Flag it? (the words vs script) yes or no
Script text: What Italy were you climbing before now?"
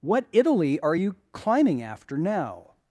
yes